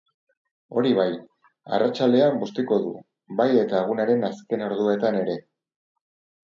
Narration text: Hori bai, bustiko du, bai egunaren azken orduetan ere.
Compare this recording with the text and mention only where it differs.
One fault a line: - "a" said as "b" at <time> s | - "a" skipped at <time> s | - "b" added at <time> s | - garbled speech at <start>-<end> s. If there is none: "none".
- "arratsaldean" added at 1.8 s
- "eta" added at 3.7 s